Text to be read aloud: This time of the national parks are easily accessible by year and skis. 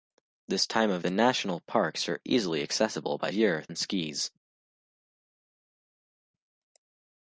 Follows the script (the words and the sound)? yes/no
yes